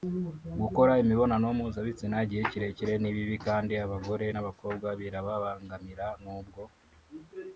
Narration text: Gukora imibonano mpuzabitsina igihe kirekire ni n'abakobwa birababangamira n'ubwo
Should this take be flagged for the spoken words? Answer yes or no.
yes